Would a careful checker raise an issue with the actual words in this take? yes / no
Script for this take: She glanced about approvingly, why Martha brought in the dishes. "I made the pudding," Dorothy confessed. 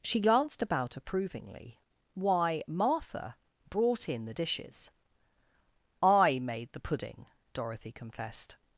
no